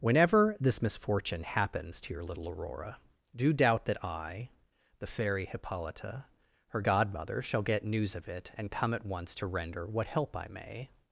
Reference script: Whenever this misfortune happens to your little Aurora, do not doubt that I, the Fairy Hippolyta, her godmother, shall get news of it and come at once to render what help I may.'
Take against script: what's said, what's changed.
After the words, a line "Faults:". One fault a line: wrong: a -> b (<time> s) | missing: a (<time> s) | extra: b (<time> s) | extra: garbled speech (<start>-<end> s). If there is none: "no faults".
Whenever this misfortune happens to your little Aurora, do doubt that I, the Fairy Hippolyta, her godmother, shall get news of it and come at once to render what help I may.'
Faults:
missing: not (3.5 s)